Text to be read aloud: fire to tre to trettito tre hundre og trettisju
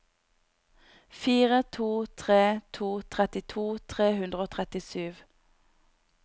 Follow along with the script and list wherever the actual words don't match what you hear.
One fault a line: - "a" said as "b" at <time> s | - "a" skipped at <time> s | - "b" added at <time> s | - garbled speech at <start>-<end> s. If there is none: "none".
none